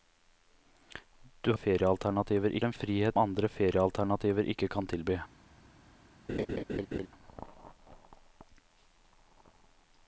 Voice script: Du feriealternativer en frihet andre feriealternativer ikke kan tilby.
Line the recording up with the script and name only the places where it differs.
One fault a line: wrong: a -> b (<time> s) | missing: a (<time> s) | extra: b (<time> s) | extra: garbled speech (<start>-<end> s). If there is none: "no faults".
no faults